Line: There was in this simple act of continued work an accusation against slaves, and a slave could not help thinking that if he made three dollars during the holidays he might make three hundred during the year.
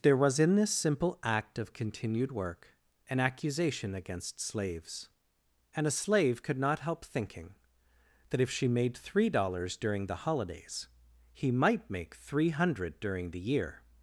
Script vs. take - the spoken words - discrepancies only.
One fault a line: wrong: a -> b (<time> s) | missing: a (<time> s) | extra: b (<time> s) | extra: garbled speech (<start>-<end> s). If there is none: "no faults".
wrong: he -> she (8.5 s)